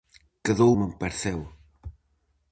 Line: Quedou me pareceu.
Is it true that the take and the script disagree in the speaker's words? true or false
false